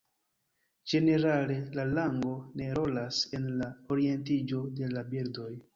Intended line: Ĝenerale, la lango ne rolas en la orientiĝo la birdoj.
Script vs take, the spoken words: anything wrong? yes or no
yes